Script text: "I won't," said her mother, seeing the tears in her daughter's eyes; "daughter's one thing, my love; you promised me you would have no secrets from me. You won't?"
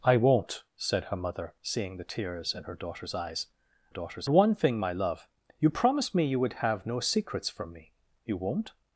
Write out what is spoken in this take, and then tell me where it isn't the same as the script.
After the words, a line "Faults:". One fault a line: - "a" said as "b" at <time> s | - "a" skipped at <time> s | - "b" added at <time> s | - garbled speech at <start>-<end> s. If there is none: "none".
"I won't," said her mother, seeing the tears in her daughter's eyes; "daughter's one thing, my love; you promised me you would have no secrets from me. You won't?"
Faults:
none